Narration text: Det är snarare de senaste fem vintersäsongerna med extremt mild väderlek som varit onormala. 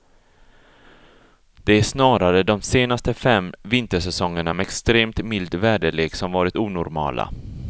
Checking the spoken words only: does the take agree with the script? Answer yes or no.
yes